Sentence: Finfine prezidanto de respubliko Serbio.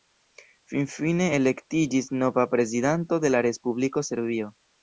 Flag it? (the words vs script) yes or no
yes